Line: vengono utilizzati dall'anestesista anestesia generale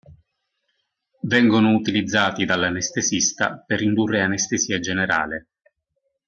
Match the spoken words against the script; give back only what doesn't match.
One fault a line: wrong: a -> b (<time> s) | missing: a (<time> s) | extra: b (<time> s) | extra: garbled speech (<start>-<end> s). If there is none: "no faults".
extra: per indurre (3.6 s)